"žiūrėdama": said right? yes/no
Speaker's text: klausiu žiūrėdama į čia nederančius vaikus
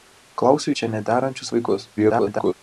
no